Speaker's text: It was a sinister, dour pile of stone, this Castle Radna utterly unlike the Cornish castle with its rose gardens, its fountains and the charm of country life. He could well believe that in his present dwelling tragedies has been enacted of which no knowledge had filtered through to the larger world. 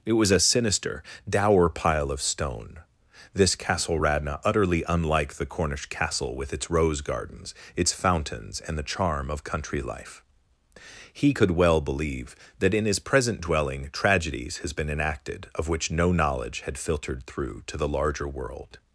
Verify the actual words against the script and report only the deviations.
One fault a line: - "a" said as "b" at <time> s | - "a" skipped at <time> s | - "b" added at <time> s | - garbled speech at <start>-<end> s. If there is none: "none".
none